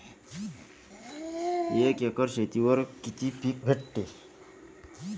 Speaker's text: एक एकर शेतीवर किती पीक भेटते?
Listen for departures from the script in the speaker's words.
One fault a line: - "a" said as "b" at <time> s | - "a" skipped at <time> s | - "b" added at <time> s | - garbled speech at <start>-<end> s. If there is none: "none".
none